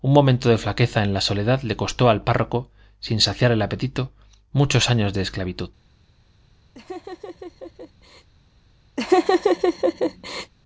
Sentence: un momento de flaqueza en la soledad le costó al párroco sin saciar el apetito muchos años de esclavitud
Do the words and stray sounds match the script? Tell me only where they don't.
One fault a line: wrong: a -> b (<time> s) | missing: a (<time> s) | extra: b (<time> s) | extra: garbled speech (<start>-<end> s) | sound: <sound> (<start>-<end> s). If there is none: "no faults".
sound: laugh (6.7-8.3 s)
sound: laugh (9.0-10.5 s)